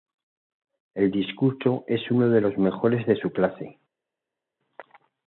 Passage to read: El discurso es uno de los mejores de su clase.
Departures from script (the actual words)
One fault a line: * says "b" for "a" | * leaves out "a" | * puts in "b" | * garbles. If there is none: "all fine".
all fine